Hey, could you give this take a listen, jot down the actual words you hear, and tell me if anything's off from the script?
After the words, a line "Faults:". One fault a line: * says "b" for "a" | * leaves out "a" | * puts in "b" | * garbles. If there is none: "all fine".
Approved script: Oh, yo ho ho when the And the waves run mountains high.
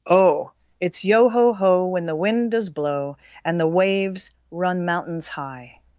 Oh, it's yo ho ho when the wind does blow, And the waves run mountains high.
Faults:
* puts in "it's"
* puts in "wind does blow"